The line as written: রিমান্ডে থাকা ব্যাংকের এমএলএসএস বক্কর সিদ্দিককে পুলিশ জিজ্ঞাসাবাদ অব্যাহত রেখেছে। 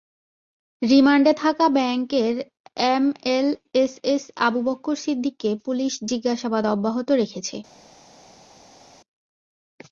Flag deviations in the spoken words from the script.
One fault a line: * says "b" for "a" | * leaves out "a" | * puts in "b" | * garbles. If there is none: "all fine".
* puts in "আবু"